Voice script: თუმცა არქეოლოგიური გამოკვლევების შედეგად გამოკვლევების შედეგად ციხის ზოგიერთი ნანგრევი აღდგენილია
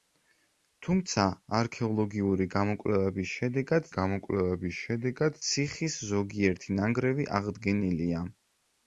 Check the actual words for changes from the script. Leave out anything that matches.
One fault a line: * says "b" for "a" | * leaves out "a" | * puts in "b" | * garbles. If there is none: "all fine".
all fine